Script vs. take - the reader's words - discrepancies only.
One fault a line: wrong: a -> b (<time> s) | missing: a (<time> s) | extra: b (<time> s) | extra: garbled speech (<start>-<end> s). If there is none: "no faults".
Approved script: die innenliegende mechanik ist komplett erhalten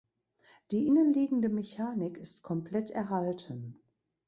no faults